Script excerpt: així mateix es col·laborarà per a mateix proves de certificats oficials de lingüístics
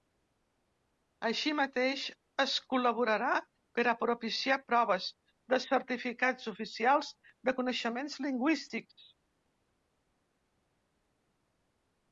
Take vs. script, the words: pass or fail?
fail